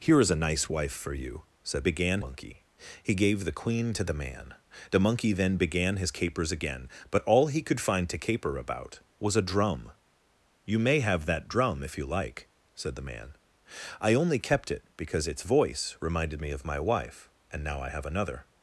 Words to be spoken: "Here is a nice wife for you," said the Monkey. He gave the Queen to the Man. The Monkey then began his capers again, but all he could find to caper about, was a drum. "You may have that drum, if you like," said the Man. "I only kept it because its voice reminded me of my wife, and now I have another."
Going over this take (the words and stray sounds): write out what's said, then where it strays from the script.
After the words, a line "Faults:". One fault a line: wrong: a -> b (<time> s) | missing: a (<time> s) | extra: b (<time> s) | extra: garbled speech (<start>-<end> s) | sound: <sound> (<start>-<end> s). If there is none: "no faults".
"Here is a nice wife for you," said began Monkey. He gave the Queen to the Man. The Monkey then began his capers again, but all he could find to caper about, was a drum. "You may have that drum, if you like," said the Man. "I only kept it because its voice reminded me of my wife, and now I have another."
Faults:
wrong: the -> began (1.8 s)